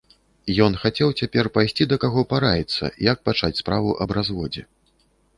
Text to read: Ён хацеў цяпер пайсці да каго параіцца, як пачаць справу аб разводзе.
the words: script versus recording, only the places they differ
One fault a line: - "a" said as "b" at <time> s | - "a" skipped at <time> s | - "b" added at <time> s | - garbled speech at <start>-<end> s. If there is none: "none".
none